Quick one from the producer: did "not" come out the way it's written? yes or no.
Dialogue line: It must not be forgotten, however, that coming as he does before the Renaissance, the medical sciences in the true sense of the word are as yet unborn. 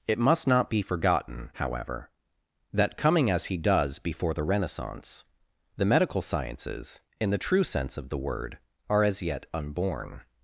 yes